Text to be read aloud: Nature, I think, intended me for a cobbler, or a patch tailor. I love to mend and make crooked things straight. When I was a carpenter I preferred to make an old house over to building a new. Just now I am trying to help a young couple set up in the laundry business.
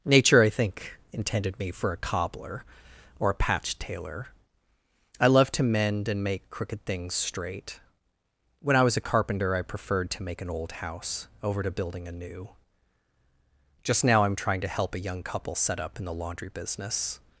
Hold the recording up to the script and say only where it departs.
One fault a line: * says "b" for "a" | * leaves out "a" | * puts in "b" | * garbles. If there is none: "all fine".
all fine